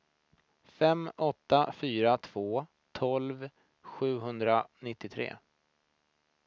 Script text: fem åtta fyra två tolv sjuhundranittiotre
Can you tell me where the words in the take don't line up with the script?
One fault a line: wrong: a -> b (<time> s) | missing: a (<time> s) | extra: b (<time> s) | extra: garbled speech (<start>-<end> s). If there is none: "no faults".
no faults